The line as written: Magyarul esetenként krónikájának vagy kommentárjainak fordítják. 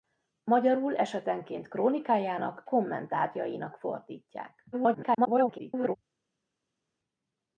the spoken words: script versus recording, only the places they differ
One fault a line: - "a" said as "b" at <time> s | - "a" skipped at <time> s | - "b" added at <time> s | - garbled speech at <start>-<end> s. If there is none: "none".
- "vagy" skipped at 2.6 s
- garbled speech at 4.7-6.0 s